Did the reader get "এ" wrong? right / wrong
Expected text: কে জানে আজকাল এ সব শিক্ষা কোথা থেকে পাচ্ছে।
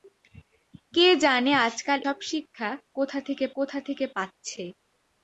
wrong